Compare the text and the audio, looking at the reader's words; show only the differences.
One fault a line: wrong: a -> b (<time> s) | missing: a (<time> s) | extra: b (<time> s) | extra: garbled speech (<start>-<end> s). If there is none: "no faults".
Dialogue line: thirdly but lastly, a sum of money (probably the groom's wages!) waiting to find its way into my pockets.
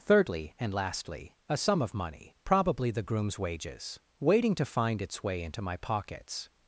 wrong: but -> and (0.6 s)